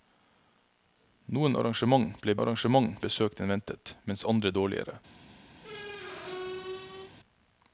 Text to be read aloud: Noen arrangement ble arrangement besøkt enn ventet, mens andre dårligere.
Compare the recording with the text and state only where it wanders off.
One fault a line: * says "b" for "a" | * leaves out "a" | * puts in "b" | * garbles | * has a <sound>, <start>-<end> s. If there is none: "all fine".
* has a squeak, 5.6-7.1 s